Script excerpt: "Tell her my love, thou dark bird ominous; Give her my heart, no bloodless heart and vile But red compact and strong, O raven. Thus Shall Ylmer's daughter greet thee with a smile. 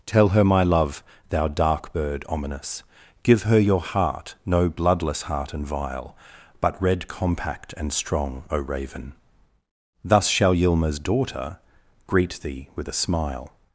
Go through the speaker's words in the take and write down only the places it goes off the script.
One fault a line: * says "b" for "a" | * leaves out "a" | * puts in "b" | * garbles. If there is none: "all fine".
* says "your" for "my"